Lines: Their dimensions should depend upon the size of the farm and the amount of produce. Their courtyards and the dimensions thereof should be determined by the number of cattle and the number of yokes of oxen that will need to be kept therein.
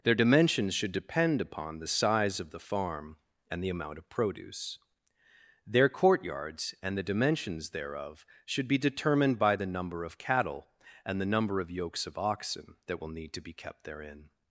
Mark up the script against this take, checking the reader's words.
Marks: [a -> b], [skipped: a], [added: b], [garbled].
Their dimensions should depend upon the size of the farm and the amount of produce. Their courtyards and the dimensions thereof should be determined by the number of cattle and the number of yokes of oxen that will need to be kept therein.